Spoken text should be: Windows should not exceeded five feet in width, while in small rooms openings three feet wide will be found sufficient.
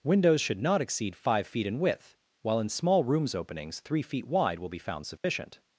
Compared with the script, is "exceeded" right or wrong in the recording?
wrong